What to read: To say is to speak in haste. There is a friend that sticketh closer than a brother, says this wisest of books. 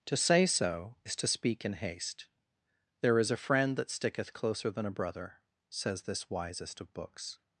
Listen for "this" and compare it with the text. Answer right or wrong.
right